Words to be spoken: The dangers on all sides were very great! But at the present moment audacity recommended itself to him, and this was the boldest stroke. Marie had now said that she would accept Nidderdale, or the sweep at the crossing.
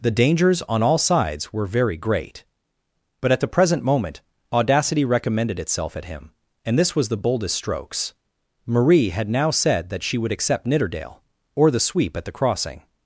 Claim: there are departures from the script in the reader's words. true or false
true